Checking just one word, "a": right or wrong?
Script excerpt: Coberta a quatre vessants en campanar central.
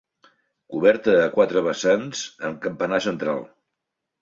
right